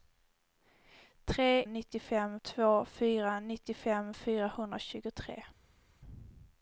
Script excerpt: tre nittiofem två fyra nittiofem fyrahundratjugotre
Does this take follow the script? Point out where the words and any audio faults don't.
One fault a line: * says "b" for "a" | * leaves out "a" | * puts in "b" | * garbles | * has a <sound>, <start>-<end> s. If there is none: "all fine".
all fine